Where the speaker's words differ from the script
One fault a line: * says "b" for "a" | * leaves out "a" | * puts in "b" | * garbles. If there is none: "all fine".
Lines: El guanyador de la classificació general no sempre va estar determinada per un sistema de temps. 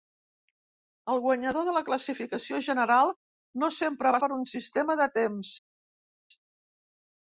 * leaves out "estar determinada"